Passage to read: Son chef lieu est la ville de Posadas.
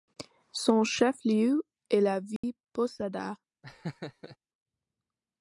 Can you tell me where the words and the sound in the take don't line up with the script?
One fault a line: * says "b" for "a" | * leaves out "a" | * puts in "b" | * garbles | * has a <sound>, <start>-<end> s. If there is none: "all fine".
* has a dropout, 2.4-2.4 s
* has a laugh, 3.6-4.4 s